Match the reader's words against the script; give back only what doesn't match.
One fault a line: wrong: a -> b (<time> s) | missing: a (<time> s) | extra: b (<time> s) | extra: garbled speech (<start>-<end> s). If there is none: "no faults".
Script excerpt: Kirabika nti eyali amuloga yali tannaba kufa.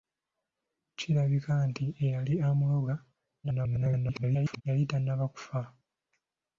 extra: garbled speech (3.4-4.6 s)